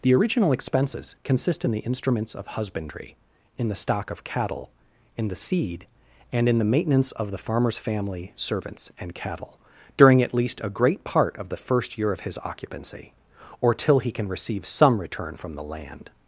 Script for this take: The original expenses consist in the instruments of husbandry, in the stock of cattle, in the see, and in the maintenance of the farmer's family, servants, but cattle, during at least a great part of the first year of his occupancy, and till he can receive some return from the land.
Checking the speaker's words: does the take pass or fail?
fail